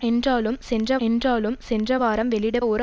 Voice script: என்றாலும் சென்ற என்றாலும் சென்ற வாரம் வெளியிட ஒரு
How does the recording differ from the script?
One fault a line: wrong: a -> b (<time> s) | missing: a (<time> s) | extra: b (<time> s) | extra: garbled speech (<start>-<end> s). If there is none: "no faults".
no faults